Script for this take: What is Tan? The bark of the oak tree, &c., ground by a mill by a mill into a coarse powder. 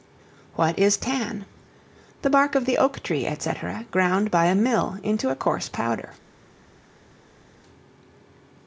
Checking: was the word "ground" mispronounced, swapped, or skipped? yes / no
no